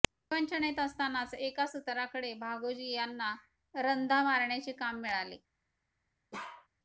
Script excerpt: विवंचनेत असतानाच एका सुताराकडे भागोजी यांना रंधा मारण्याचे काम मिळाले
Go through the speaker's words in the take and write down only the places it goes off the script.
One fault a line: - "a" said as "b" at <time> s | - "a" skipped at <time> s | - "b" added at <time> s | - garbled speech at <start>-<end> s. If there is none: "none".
none